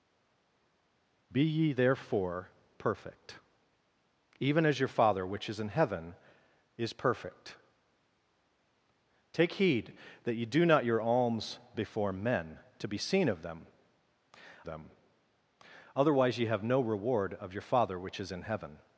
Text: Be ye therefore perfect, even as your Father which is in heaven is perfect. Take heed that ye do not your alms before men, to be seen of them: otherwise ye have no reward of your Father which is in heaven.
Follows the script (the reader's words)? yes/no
no